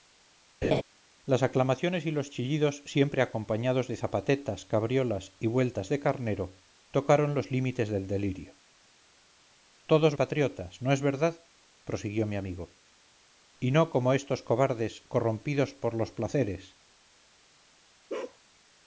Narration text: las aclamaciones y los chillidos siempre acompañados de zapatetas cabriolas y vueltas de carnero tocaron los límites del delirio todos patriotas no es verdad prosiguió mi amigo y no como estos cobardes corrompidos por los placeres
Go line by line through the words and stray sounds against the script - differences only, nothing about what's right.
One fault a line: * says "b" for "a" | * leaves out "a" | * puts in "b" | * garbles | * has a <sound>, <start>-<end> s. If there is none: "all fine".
* has a laugh, 0.6-0.8 s
* has a bark, 18.1-18.4 s